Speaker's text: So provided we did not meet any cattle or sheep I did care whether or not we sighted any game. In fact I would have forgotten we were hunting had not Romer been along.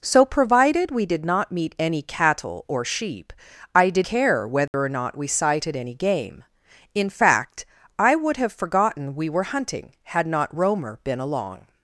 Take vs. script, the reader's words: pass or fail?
pass